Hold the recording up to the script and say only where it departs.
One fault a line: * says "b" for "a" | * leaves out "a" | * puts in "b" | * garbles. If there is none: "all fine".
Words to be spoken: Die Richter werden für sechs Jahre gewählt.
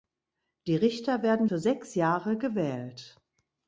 all fine